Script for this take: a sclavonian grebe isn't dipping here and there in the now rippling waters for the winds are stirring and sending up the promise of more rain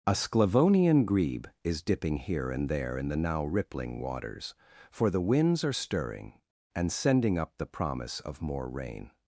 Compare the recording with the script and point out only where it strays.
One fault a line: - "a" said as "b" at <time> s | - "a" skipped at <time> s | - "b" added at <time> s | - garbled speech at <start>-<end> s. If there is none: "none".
- "isn't" said as "is" at 1.6 s